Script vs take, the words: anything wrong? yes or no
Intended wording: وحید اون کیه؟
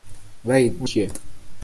no